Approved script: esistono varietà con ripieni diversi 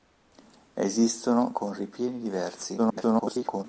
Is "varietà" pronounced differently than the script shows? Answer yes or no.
yes